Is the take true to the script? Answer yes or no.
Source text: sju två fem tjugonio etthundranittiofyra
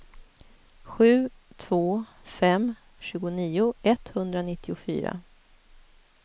yes